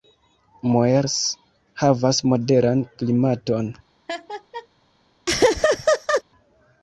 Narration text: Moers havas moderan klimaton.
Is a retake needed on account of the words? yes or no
no